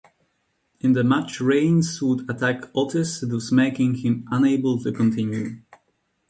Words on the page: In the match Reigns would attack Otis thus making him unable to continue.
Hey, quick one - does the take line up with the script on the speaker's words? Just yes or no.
yes